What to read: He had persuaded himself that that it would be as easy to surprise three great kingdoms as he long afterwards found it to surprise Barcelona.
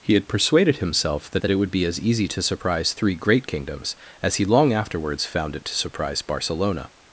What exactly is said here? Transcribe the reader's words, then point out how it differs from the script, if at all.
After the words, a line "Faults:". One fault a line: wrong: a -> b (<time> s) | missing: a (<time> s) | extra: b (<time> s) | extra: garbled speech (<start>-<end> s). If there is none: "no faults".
He had persuaded himself that that it would be as easy to surprise three great kingdoms as he long afterwards found it to surprise Barcelona.
Faults:
no faults